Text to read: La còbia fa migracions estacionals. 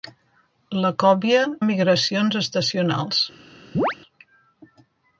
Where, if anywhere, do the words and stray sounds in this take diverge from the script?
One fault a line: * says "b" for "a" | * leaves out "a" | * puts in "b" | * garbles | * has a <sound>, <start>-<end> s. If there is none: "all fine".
* leaves out "fa"
* has a chirp, 3.7-4.0 s